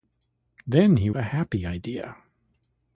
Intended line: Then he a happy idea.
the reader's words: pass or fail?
pass